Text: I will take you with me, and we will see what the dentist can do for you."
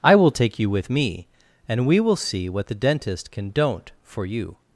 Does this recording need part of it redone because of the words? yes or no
yes